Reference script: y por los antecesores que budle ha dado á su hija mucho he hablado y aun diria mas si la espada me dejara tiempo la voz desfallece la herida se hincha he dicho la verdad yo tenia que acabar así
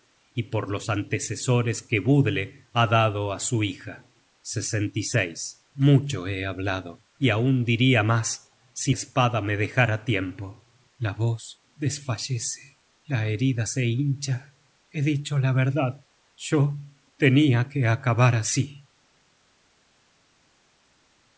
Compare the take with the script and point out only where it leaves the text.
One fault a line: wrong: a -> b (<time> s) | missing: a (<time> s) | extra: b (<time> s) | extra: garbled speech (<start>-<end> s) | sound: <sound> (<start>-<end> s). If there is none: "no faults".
missing: la (8.9 s)